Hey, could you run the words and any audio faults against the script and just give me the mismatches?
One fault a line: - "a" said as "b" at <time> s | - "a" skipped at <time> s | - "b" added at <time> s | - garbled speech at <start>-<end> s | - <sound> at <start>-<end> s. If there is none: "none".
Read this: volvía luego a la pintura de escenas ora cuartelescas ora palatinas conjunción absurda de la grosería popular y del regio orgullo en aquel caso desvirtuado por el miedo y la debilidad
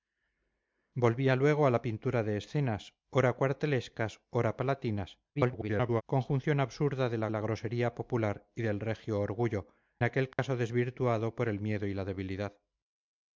- garbled speech at 5.3-6.0 s
- "la" added at 7.3 s
- "en" skipped at 9.7 s
- dropout at 10.3-10.4 s